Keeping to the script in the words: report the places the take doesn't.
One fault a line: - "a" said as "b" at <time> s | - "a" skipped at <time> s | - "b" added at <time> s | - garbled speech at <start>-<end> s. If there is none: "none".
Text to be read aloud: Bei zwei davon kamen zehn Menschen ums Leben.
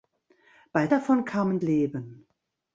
- "zwei" skipped at 0.9 s
- "zehn Menschen ums" skipped at 1.6 s